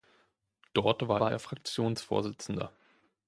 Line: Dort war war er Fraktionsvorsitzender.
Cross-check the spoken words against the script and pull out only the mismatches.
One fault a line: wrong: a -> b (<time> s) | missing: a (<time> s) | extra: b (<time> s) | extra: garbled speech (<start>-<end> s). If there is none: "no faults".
no faults